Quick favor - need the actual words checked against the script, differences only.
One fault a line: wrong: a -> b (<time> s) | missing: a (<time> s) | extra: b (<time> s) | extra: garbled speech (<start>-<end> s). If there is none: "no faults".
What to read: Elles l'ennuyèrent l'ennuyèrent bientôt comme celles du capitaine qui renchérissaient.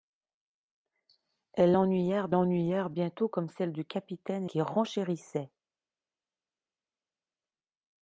no faults